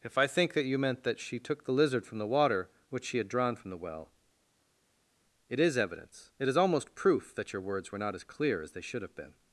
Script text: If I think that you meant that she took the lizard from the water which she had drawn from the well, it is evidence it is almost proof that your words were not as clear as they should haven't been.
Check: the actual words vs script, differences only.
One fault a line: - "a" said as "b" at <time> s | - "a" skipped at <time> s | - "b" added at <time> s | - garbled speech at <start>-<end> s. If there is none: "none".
- "haven't" said as "have" at 9.0 s